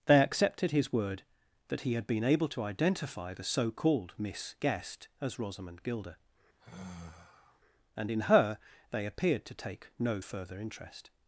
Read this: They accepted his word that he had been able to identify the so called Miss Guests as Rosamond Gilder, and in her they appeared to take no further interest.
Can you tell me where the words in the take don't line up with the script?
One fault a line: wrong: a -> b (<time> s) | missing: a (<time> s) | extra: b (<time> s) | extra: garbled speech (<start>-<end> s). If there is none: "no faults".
wrong: Guests -> Guest (4.6 s)